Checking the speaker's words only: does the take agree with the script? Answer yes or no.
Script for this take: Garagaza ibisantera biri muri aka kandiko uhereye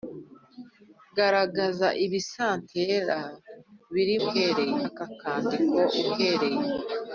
no